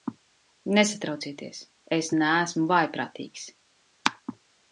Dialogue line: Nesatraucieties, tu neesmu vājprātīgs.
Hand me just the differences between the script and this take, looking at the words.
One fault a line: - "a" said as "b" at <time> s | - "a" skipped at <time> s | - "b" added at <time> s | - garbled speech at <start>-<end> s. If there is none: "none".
- "tu" said as "es" at 2.0 s